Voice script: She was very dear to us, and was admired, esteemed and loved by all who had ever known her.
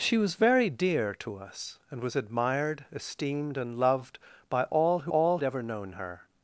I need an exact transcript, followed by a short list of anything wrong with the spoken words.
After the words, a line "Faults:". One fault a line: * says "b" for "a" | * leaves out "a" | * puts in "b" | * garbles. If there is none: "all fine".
She was very dear to us, and was admired, esteemed and loved by all who all ever known her.
Faults:
* says "all" for "had"